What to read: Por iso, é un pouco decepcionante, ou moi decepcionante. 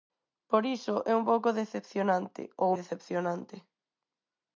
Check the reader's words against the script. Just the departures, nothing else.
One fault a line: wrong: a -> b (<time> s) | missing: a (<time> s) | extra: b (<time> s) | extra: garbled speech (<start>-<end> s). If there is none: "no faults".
missing: moi (2.7 s)